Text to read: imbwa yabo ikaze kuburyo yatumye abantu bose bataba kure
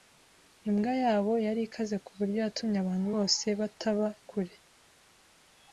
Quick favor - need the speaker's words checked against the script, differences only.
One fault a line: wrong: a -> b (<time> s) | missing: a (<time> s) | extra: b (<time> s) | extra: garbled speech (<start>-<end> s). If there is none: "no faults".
extra: yari (1.4 s)